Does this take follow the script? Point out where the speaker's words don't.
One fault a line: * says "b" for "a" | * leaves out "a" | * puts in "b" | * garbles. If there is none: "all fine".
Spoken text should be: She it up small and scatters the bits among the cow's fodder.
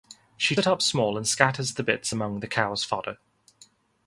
all fine